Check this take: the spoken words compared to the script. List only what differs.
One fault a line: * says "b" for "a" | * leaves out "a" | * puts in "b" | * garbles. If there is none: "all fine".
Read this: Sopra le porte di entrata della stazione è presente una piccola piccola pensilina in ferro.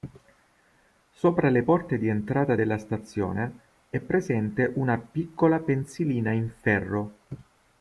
* leaves out "piccola"